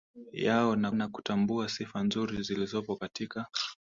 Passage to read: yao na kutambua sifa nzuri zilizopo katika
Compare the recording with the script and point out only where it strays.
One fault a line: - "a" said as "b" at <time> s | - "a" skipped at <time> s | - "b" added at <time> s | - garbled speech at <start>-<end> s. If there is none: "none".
- "na" added at 0.9 s